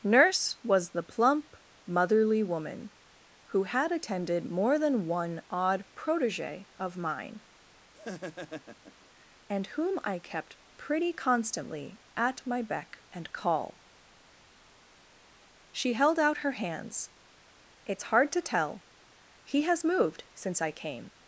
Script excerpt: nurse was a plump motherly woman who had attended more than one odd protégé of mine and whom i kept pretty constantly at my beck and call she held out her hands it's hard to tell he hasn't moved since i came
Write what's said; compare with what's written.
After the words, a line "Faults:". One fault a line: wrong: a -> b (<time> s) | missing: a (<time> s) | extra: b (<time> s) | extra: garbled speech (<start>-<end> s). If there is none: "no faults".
nurse was the plump motherly woman who had attended more than one odd protégé of mine and whom i kept pretty constantly at my beck and call she held out her hands it's hard to tell he has moved since i came
Faults:
wrong: a -> the (0.9 s)
wrong: hasn't -> has (19.6 s)